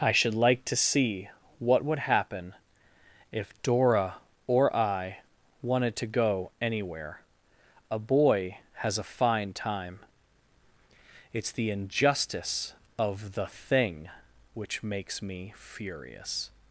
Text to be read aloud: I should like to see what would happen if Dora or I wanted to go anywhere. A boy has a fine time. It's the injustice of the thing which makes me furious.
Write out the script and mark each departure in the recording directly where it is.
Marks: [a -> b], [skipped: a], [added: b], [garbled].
I should like to see what would happen if Dora or I wanted to go anywhere. A boy has a fine time. It's the injustice of the thing which makes me furious.